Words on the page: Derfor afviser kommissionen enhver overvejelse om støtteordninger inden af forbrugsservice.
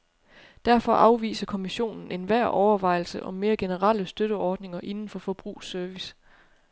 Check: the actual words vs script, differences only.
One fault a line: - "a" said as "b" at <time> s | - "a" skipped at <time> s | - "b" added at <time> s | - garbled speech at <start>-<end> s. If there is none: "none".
- "mere generelle" added at 3.3 s
- "af" said as "for" at 5.1 s